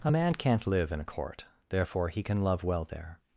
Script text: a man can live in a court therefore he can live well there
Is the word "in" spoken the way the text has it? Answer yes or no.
yes